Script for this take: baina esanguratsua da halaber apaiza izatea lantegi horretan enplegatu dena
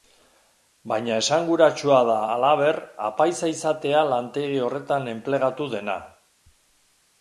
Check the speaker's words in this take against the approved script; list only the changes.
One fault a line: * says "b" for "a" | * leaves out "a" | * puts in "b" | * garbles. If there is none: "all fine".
all fine